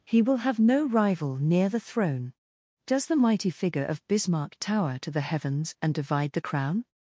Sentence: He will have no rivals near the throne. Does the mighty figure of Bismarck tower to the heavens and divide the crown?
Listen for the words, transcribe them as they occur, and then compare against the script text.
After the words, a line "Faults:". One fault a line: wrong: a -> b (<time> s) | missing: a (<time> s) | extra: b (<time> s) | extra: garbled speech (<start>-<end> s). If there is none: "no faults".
He will have no rival near the throne. Does the mighty figure of Bismarck tower to the heavens and divide the crown?
Faults:
wrong: rivals -> rival (0.9 s)